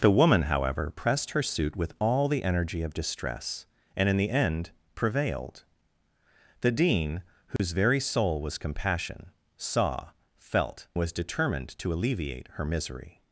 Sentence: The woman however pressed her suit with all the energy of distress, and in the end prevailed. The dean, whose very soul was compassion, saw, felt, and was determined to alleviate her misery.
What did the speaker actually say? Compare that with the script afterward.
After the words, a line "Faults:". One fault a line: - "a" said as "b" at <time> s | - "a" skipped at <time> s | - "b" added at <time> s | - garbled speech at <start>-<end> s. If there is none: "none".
The woman however pressed her suit with all the energy of distress, and in the end prevailed. The dean, whose very soul was compassion, saw, felt, was determined to alleviate her misery.
Faults:
- "and" skipped at 10.9 s